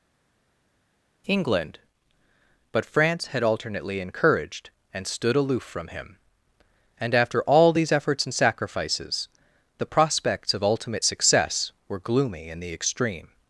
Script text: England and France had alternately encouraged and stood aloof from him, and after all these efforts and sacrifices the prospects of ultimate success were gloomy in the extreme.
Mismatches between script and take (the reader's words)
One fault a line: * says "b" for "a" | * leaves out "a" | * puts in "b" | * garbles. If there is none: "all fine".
* says "but" for "and"